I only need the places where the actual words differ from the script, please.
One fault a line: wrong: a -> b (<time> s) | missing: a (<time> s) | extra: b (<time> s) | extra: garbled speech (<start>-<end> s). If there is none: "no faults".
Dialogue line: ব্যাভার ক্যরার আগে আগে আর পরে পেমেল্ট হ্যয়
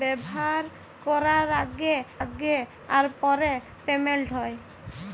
no faults